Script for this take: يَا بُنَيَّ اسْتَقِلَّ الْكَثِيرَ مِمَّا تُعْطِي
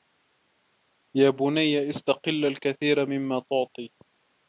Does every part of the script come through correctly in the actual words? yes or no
yes